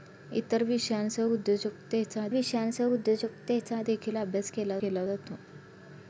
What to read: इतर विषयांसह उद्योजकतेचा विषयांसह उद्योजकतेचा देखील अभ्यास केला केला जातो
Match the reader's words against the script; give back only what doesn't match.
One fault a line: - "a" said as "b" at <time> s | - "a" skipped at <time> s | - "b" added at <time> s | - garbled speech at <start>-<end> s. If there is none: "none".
none